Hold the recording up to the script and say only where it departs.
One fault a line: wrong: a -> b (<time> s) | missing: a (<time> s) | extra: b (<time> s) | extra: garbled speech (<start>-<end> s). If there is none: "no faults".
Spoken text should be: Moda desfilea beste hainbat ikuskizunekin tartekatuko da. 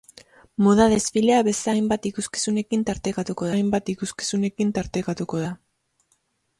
extra: hainbat ikuskizunekin tartekatuko (3.5 s)